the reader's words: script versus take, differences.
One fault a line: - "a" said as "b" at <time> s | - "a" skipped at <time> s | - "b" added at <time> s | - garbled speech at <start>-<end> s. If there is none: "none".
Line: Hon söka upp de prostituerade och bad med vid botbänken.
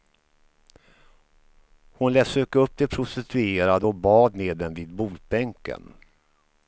- "lät" added at 2.1 s
- "dem" added at 4.6 s